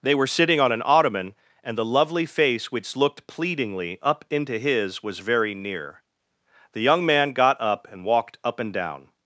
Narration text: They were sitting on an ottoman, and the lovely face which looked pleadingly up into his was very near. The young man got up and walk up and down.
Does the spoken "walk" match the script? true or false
false